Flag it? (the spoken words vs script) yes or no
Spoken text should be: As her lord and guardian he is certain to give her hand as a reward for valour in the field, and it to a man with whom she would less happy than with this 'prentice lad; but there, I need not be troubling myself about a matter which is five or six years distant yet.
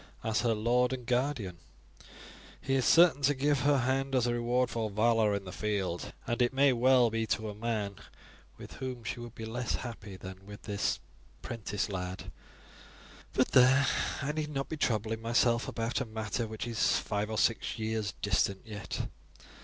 yes